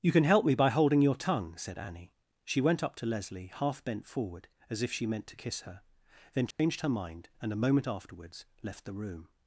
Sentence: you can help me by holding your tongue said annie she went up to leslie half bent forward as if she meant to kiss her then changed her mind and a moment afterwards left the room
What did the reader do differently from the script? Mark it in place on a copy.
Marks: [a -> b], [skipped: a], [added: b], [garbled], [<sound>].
you can help me by holding your tongue said annie she went up to leslie half bent forward as if she meant to kiss her then changed [dropout] her mind and a moment afterwards left the room